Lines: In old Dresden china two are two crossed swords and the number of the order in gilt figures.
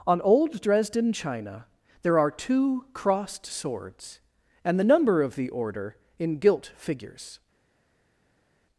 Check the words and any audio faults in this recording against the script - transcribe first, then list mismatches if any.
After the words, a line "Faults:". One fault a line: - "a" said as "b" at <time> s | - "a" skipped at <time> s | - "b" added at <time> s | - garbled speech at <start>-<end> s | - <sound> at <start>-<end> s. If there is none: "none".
On old Dresden china there are two crossed swords and the number of the order in gilt figures.
Faults:
- "In" said as "On" at 0.1 s
- "two" said as "there" at 2.0 s